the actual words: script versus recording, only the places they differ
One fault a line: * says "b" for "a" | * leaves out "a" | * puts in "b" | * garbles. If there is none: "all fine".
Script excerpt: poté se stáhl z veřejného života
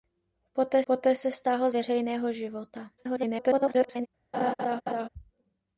* puts in "poté"
* leaves out "z"
* garbles